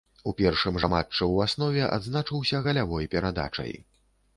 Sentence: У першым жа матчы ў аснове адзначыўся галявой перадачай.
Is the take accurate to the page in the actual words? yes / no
yes